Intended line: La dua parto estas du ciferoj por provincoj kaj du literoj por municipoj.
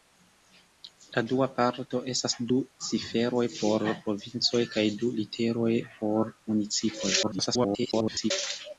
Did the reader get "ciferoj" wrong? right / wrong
right